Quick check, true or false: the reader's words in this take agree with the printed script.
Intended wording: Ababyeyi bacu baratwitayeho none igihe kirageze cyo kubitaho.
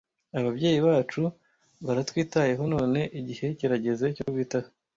true